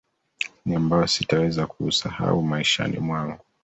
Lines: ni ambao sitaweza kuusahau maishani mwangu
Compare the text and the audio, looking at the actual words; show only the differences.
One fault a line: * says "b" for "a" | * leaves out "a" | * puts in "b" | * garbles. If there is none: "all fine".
all fine